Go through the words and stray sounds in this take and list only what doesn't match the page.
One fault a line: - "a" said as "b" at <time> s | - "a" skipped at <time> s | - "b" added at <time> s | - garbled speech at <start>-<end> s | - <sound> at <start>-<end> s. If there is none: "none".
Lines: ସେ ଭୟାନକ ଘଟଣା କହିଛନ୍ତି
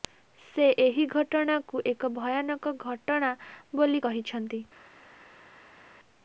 - "ଏହି ଘଟଣାକୁ ଏକ" added at 0.8 s
- "ବୋଲି" added at 3.8 s